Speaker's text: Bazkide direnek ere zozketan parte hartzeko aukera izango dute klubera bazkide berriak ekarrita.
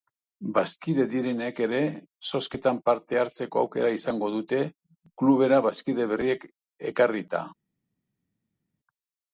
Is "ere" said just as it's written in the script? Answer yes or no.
yes